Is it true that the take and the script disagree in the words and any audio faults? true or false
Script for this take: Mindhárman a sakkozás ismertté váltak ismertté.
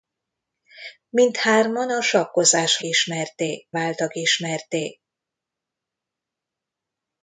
false